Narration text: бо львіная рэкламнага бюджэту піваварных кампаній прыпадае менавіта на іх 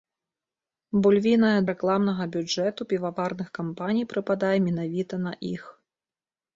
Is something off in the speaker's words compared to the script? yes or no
no